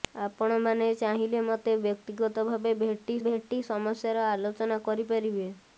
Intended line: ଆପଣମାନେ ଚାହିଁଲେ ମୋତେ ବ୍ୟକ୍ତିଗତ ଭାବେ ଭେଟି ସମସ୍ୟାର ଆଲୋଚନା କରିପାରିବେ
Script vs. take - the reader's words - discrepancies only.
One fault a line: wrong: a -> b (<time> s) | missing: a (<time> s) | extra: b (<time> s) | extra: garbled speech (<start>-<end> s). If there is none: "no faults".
extra: ଭେଟି (3.2 s)